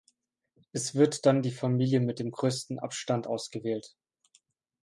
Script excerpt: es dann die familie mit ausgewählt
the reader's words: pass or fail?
fail